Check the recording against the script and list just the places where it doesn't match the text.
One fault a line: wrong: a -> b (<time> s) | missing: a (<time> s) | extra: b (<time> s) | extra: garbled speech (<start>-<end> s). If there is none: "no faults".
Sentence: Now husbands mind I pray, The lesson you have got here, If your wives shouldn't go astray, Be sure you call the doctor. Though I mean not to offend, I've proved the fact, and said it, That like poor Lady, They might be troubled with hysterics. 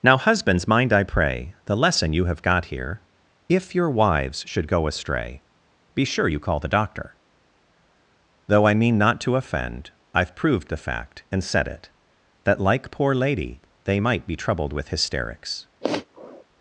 wrong: shouldn't -> should (4.5 s)